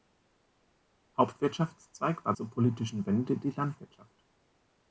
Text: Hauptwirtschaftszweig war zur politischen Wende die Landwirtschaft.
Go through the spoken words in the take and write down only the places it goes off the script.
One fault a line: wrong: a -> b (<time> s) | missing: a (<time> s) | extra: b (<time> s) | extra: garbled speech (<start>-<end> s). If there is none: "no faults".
no faults